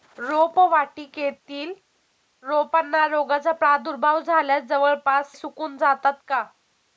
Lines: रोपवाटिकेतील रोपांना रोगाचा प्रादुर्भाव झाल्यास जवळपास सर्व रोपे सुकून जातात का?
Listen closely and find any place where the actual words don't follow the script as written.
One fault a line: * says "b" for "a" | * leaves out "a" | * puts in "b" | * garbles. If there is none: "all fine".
* leaves out "सर्व रोपे"